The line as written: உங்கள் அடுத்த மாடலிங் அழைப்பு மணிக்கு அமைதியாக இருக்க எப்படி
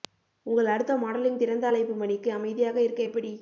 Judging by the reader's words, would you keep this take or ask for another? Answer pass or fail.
fail